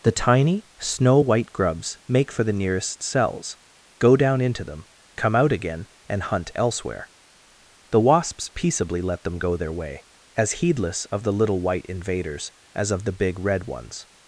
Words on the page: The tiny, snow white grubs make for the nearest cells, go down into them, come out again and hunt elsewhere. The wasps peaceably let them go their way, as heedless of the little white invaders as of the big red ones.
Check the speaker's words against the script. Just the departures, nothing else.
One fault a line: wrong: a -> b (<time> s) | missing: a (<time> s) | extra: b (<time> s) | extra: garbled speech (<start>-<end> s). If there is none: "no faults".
no faults